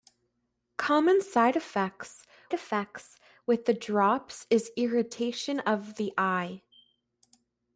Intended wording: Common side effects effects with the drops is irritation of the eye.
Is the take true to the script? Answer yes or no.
yes